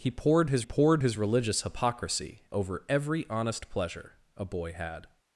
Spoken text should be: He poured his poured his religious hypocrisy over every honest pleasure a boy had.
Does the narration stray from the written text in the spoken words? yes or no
no